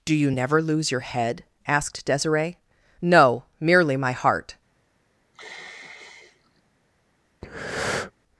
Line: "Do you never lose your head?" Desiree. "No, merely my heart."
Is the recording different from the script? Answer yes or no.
yes